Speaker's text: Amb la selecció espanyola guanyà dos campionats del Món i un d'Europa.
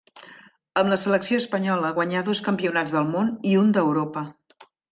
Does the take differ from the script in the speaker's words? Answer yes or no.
no